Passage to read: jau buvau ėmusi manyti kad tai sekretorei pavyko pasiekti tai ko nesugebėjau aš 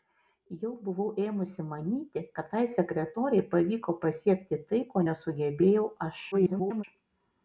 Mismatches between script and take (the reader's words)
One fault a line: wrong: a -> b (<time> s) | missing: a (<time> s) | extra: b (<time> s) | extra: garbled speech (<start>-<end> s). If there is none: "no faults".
extra: garbled speech (6.3-6.8 s)